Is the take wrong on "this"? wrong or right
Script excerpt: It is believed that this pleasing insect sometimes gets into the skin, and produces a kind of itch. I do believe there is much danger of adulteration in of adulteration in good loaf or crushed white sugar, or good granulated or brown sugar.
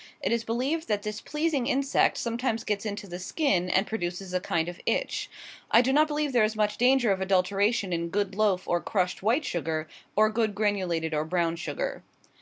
right